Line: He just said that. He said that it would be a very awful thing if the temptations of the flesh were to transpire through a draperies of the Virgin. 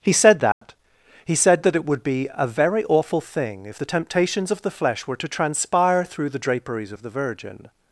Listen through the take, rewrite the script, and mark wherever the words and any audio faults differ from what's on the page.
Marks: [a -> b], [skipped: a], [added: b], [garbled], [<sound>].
He [skipped: just] said that. [dropout] He said that it would be a very awful thing if the temptations of the flesh were to transpire through [a -> the] draperies of the Virgin.